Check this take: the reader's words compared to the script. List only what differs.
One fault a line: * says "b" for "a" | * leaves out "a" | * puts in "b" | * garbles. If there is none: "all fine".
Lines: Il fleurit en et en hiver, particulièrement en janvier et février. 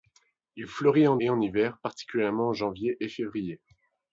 all fine